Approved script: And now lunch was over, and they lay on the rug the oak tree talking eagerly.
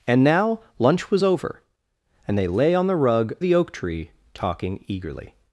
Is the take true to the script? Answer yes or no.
yes